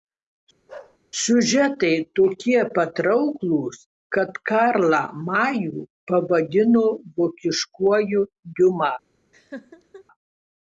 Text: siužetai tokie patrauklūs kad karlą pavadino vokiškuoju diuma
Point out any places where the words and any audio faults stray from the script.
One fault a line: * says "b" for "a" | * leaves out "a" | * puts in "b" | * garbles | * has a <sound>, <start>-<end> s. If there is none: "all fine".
* has a bark, 0.7-1.0 s
* puts in "majų"
* has a laugh, 9.3-10.0 s